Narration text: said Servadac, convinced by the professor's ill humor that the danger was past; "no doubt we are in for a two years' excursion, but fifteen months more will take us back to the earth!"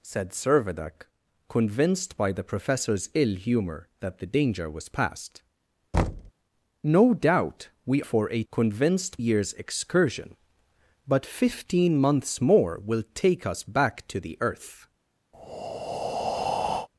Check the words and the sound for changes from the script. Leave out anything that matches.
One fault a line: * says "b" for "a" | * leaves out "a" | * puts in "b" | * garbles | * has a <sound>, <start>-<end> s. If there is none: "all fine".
* has a thud, 5.9-6.3 s
* leaves out "are in"
* says "convinced" for "two"
* has a breath, 15.3-16.9 s